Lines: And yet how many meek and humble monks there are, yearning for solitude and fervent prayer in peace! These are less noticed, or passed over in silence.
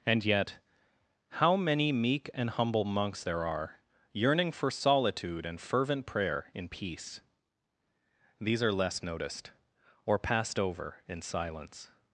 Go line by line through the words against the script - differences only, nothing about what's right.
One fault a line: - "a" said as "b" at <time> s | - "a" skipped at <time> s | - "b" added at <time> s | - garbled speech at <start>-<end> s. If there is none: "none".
none